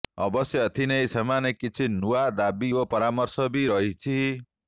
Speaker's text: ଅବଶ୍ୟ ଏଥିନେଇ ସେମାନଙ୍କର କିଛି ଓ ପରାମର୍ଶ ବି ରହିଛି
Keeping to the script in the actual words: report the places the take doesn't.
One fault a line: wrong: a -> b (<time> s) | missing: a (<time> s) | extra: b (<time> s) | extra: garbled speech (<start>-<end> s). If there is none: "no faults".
extra: ନୂଆ ଦାବି (2.0 s)